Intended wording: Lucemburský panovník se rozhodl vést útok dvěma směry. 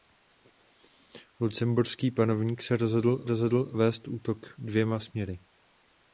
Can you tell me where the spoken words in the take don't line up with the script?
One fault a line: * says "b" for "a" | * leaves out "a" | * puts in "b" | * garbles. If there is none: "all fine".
* puts in "rozhodl"